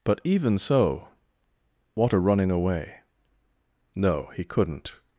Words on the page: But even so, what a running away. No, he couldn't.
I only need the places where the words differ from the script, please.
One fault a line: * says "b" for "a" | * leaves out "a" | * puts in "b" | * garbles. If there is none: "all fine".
all fine